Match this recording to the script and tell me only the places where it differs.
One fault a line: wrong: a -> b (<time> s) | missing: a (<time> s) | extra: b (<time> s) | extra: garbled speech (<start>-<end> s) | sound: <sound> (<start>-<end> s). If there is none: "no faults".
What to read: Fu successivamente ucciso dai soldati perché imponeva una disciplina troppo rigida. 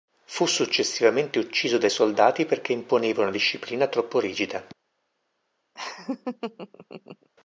sound: laugh (5.7-7.3 s)